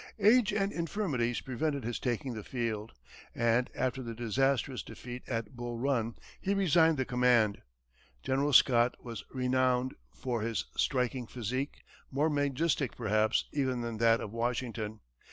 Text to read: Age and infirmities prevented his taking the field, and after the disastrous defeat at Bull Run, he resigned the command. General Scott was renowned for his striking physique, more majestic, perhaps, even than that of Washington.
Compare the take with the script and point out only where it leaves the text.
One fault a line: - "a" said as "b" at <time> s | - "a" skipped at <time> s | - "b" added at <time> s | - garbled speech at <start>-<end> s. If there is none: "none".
none